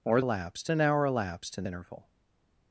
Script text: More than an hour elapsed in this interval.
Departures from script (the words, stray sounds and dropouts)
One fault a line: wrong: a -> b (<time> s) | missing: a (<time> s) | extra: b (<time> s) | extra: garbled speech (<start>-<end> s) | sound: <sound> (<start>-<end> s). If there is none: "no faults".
wrong: than -> elapsed (0.2 s)
missing: this (1.6 s)